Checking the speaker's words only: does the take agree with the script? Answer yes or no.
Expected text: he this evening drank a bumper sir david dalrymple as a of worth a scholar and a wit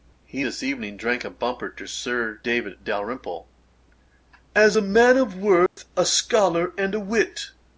no